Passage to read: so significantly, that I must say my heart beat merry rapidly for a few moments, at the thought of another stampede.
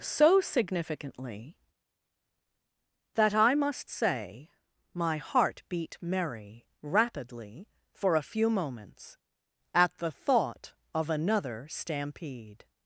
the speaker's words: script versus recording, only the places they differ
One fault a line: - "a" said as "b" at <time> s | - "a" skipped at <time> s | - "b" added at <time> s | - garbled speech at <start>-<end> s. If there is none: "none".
none